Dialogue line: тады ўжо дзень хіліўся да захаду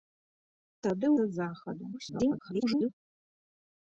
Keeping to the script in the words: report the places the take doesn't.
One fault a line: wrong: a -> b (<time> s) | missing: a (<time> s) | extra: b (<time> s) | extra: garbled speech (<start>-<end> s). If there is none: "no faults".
missing: ўжо дзень хіліўся (1.1 s)
extra: garbled speech (1.9-2.9 s)